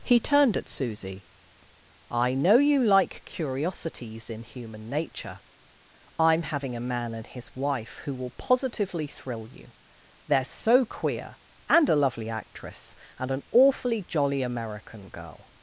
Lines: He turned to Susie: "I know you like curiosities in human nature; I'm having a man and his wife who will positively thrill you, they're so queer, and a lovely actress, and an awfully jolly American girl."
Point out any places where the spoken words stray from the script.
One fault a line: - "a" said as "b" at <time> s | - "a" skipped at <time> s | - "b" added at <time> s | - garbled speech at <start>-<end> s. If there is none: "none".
- "to" said as "at" at 0.6 s